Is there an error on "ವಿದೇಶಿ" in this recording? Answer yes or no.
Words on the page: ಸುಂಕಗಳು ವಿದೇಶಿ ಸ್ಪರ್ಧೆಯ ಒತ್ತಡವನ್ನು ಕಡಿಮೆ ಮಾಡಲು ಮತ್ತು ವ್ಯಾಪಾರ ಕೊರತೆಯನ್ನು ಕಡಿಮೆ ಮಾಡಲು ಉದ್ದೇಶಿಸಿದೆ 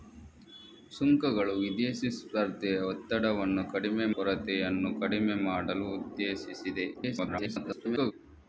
no